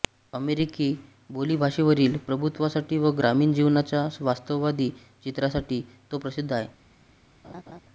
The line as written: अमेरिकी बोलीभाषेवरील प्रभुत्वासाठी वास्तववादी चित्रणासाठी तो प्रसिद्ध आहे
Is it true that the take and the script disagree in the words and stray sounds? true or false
true